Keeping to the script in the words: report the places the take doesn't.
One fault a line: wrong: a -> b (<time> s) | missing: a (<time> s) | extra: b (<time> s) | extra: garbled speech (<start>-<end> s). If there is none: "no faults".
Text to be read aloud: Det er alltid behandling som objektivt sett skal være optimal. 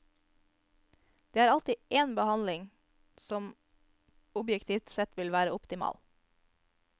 extra: én (1.9 s)
wrong: skal -> vil (5.2 s)